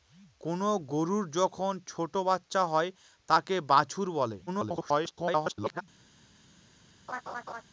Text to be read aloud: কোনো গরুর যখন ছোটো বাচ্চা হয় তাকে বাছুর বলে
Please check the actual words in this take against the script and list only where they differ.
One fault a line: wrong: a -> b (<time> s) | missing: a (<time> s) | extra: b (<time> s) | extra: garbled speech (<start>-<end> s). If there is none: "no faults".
extra: garbled speech (4.5-5.8 s)